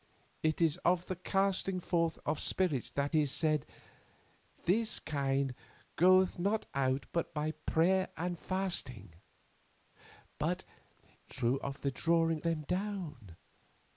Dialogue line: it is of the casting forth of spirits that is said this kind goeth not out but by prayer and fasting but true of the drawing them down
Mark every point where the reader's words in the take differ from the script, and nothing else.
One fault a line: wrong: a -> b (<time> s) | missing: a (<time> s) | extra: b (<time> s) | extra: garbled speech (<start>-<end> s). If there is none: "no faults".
no faults